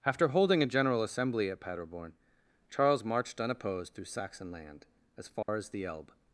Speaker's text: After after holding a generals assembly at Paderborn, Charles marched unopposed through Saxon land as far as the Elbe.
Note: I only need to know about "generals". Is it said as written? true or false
false